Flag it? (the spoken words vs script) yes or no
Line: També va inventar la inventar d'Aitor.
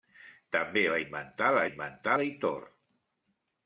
no